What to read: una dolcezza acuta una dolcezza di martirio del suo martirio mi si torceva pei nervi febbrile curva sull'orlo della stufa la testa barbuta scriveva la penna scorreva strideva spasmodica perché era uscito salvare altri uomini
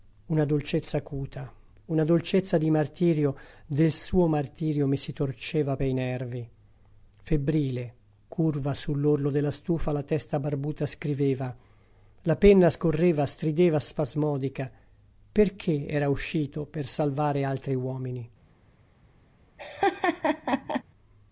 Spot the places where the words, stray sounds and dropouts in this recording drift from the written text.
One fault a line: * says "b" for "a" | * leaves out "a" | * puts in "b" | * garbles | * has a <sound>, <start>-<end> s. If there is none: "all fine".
* puts in "per"
* has a laugh, 19.6-20.8 s